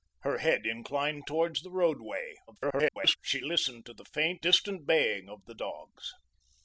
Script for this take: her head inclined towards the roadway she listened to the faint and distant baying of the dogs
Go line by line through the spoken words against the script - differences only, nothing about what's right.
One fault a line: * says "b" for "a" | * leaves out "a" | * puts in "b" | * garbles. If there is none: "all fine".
* garbles
* leaves out "and"